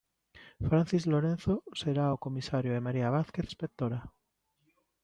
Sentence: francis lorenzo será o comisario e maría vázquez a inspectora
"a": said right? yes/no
no